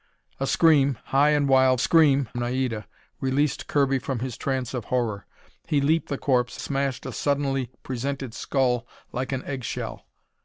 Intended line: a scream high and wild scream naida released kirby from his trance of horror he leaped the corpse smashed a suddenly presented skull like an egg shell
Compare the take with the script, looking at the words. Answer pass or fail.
pass